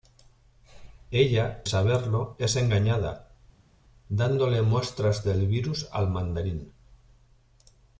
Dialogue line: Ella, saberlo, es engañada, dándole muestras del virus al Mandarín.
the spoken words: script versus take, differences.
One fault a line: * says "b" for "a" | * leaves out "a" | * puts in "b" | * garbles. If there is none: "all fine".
all fine